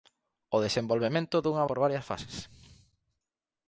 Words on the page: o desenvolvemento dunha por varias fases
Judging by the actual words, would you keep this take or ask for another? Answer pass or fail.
pass